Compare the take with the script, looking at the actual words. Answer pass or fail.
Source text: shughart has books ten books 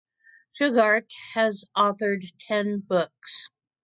fail